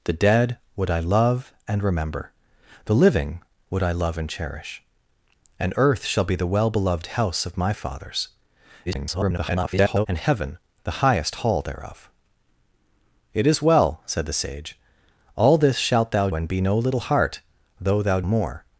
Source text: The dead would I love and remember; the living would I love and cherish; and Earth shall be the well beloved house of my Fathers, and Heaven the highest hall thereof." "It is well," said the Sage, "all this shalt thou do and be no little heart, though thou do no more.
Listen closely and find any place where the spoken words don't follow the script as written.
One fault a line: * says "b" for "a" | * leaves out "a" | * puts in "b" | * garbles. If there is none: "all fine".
* garbles
* leaves out "do"
* leaves out "do no"